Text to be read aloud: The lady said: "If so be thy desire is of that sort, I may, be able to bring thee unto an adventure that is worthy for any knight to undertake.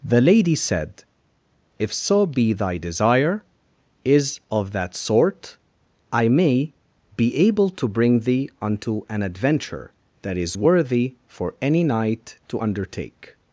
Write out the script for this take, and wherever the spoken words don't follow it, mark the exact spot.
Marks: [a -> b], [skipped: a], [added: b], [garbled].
The lady said: "If so be thy desire is of that sort, I may, be able to bring thee unto an adventure that is worthy for any knight to undertake.